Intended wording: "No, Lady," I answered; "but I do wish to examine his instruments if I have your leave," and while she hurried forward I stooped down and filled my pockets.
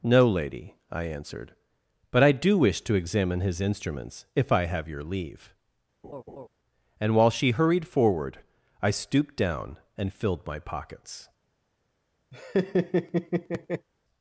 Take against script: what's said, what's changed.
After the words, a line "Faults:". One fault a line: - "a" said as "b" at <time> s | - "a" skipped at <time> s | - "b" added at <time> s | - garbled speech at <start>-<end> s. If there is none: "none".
"No, Lady," I answered; "but I do wish to examine his instruments if I have your leave," and while she hurried forward I stooped down and filled my pockets.
Faults:
none